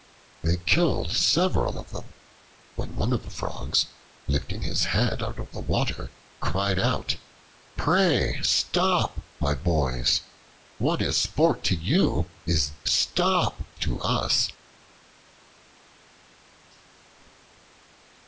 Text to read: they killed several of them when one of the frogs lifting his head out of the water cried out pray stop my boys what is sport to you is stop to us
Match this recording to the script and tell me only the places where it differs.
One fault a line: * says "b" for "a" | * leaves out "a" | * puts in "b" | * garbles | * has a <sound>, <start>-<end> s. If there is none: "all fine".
all fine